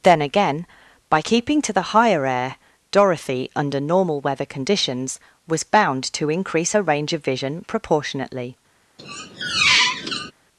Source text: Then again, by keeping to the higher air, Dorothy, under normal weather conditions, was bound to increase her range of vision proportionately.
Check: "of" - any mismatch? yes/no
no